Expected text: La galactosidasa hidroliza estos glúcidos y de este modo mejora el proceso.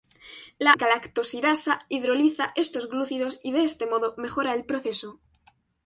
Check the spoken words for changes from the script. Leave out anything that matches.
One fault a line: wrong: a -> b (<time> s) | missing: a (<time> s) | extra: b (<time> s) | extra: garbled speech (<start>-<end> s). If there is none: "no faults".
no faults